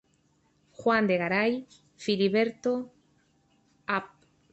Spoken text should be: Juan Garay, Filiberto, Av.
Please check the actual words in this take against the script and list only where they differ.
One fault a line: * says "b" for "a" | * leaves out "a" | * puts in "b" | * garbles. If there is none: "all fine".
* puts in "de"